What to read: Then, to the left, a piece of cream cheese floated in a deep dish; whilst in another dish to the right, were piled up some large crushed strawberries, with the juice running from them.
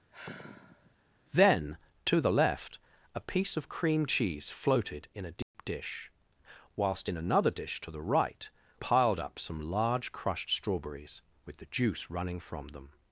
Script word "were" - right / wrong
wrong